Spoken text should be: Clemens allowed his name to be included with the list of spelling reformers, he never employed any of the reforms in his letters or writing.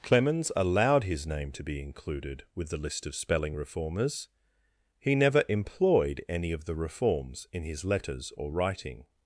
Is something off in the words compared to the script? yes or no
no